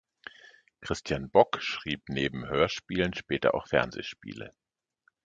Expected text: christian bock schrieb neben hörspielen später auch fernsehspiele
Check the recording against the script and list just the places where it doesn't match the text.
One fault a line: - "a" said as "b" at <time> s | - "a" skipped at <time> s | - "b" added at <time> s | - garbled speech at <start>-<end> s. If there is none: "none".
none